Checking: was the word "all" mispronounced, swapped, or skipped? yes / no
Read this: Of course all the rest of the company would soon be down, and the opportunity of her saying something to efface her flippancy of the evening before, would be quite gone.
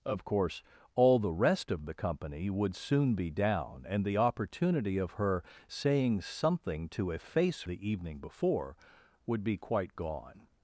no